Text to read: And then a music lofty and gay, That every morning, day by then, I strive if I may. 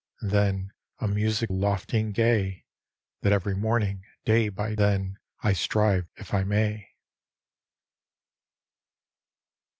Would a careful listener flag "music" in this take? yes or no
no